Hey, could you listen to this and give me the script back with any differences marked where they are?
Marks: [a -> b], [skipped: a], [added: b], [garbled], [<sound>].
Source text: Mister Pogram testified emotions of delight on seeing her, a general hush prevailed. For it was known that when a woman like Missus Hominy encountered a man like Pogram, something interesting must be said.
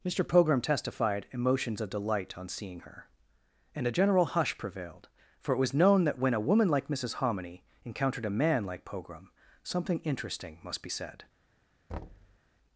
Mister Pogram testified emotions of delight on seeing her, [added: and] a general hush prevailed. For it was known that when a woman like Missus Hominy encountered a man like Pogram, something interesting must be said. [thud]